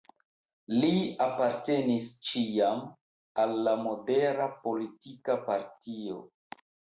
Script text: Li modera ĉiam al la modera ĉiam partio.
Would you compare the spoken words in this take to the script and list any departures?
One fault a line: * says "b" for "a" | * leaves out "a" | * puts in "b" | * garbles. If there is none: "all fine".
* says "apartenis" for "modera"
* says "politika" for "ĉiam"